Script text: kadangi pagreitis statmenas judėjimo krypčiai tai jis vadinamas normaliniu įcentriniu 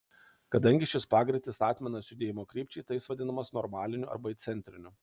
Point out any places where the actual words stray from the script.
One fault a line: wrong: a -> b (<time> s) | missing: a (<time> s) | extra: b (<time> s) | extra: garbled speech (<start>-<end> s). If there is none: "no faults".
extra: šis (0.9 s)
extra: arba (4.2 s)